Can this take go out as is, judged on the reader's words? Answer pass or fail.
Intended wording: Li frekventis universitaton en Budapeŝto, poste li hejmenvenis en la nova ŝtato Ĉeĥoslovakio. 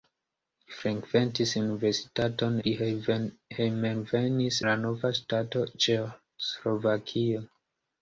fail